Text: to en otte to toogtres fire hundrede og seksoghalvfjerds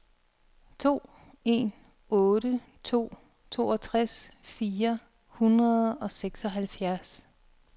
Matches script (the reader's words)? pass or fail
pass